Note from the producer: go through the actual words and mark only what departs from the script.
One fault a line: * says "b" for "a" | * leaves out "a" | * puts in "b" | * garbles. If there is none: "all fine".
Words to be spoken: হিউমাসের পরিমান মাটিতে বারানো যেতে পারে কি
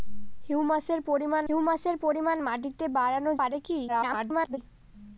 * puts in "হিউমাসের পরিমান"
* leaves out "যেতে"
* garbles